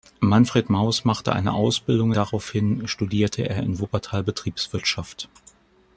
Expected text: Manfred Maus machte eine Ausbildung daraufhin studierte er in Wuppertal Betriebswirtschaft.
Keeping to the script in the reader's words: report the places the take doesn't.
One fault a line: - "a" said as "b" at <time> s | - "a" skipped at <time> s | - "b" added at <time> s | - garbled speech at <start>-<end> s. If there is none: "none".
none